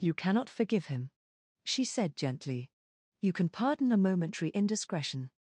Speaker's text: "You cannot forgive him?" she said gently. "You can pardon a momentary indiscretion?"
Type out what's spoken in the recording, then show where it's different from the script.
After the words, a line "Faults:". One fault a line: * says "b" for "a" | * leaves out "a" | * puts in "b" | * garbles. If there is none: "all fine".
"You cannot forgive him?" she said gently. "You can pardon a momentary indiscretion?"
Faults:
all fine